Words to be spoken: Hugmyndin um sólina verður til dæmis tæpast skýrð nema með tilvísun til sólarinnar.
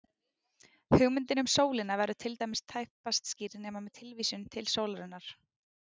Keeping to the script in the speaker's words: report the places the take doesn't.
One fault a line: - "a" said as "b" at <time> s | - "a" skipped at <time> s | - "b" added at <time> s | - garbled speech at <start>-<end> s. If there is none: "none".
none